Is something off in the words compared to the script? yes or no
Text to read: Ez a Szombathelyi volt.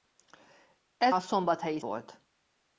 no